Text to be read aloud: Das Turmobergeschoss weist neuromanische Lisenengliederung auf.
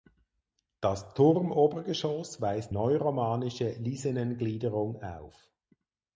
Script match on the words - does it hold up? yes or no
yes